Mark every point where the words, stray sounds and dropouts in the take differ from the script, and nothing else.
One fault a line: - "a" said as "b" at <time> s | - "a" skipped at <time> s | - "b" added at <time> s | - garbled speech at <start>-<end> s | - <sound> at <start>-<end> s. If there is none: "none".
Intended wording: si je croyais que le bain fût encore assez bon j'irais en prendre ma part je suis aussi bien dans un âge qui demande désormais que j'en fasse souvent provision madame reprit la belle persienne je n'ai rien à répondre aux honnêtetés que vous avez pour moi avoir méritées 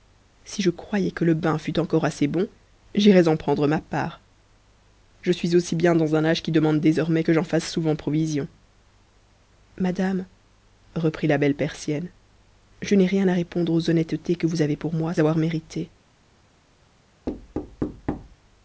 - thud at 17.3-18.4 s